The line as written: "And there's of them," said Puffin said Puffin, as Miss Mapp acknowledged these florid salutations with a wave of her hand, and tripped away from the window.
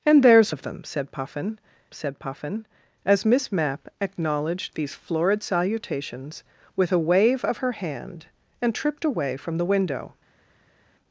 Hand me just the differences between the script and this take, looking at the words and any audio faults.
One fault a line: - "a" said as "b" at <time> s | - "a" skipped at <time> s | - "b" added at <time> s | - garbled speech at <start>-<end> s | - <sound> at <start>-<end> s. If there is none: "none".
none